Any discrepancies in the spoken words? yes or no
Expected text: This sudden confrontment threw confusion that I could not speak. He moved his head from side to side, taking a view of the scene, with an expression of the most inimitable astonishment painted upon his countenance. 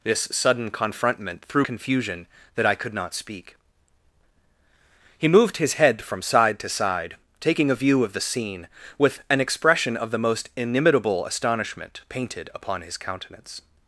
no